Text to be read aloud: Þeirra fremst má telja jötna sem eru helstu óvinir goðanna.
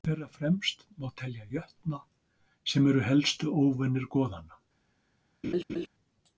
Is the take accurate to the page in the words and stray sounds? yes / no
no